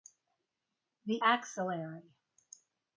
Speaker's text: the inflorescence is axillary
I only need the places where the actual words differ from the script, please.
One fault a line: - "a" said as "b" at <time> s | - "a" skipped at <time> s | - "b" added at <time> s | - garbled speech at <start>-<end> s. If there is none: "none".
- "inflorescence is" skipped at 1.2 s